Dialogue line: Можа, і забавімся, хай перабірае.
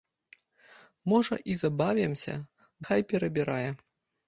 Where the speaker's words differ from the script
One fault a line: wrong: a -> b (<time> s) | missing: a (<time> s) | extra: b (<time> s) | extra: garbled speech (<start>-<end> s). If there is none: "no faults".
no faults